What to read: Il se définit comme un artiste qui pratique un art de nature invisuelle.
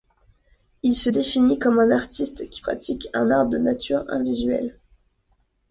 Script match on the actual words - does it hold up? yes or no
yes